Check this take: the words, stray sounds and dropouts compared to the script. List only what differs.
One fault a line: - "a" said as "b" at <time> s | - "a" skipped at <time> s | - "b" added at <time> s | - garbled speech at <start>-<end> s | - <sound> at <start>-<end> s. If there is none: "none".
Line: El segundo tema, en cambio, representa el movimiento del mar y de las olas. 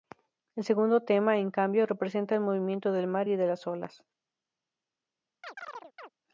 - chirp at 5.4-6.1 s